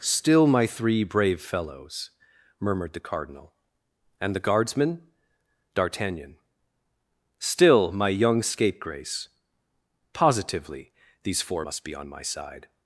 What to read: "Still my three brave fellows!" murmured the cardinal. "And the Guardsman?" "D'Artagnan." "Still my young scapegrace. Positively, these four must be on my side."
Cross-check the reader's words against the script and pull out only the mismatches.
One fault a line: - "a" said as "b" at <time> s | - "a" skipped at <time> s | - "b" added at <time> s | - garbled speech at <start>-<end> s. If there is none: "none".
none